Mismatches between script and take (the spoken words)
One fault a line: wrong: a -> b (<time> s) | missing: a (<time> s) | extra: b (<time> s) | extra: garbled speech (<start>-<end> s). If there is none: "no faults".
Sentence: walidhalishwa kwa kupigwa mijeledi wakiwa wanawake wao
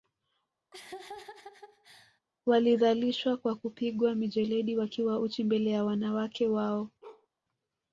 extra: uchi mbele ya (5.2 s)